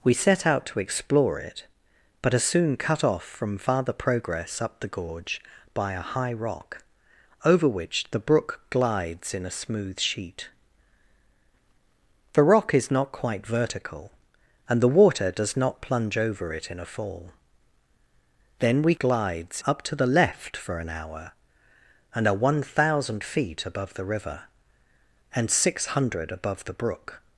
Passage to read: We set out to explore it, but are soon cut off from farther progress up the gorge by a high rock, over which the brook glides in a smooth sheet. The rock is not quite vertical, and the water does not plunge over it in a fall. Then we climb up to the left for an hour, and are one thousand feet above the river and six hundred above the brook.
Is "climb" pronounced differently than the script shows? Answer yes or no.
yes